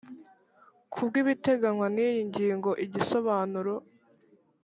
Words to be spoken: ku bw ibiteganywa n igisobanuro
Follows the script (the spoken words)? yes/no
no